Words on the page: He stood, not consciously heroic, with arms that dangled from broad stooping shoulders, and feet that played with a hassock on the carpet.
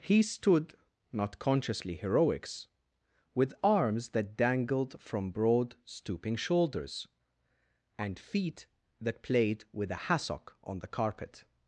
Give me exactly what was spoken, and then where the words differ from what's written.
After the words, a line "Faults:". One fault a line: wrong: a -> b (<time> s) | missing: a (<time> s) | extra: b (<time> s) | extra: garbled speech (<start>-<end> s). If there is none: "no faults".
He stood, not consciously heroics, with arms that dangled from broad stooping shoulders, and feet that played with a hassock on the carpet.
Faults:
wrong: heroic -> heroics (1.9 s)